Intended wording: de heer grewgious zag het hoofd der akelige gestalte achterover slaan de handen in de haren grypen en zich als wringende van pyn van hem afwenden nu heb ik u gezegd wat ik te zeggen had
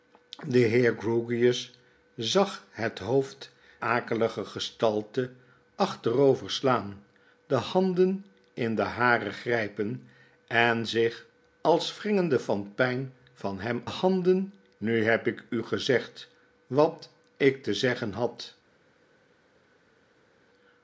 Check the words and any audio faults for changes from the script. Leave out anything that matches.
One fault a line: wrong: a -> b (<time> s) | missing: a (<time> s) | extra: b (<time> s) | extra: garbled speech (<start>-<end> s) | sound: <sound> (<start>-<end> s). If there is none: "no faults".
missing: der (3.5 s)
wrong: afwenden -> handen (13.8 s)